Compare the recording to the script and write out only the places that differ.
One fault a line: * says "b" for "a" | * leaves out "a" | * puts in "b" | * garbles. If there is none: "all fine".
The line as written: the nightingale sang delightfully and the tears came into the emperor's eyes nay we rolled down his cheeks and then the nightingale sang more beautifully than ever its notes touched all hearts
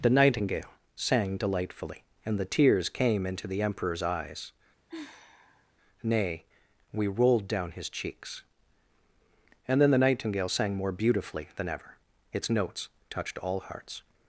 all fine